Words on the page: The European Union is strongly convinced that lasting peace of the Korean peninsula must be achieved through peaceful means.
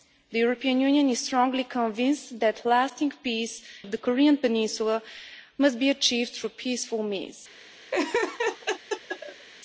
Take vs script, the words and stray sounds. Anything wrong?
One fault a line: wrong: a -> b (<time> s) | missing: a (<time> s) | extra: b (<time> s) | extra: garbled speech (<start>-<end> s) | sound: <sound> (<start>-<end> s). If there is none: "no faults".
sound: laugh (7.9-9.5 s)